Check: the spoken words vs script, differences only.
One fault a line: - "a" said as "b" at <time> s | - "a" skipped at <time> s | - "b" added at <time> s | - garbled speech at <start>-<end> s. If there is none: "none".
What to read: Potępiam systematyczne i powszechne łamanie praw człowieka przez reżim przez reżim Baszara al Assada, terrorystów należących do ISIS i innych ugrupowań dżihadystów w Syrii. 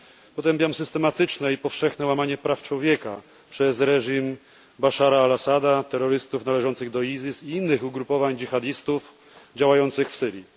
- "przez reżim" skipped at 4.4 s
- "działających" added at 9.6 s